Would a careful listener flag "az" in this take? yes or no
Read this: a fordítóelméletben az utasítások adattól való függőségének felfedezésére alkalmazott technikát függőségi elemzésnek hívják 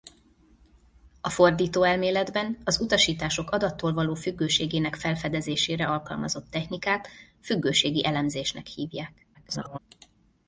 no